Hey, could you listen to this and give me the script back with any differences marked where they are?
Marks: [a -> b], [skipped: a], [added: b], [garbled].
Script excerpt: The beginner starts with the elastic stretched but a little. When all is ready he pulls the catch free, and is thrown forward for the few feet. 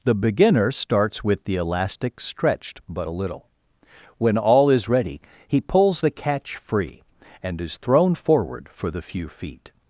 The beginner starts with the elastic stretched but a little. When all is ready he pulls the catch free, and is thrown forward for the few feet.